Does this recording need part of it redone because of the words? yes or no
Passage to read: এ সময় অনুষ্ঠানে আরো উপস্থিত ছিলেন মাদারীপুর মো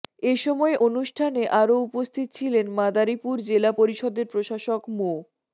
yes